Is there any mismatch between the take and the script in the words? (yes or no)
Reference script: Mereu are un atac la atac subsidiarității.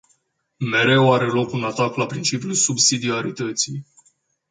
yes